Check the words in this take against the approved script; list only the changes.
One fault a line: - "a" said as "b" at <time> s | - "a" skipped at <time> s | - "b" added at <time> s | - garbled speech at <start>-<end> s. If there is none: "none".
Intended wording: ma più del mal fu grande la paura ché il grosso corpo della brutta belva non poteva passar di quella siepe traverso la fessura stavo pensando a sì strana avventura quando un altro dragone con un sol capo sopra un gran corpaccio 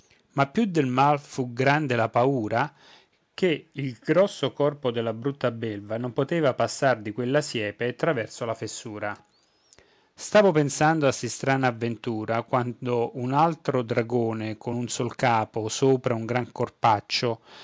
none